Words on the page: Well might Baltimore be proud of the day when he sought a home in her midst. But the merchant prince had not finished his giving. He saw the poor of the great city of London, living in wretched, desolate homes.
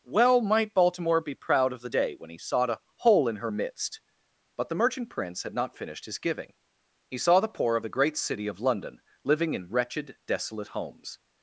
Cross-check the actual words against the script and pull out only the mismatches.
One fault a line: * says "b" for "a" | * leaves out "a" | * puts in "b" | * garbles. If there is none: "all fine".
* says "hole" for "home"